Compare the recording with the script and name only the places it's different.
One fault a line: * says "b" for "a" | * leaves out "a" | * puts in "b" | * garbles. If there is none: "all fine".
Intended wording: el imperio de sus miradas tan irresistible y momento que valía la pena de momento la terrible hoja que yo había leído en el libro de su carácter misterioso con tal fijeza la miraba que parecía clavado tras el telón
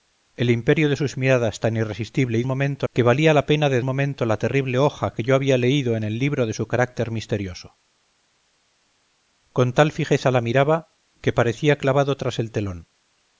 all fine